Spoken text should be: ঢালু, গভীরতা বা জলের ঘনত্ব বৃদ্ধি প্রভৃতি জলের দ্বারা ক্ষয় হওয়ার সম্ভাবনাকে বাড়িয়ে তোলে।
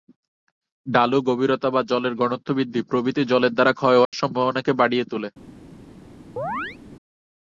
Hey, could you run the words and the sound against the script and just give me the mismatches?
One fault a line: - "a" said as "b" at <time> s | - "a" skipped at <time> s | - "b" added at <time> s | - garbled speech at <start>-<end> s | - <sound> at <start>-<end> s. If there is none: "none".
- dropout at 4.0-4.1 s
- chirp at 6.4-6.8 s